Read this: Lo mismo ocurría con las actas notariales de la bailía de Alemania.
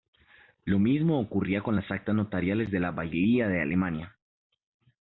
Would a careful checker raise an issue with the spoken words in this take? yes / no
no